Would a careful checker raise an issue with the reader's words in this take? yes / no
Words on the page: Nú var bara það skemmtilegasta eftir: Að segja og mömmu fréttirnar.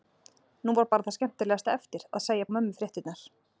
no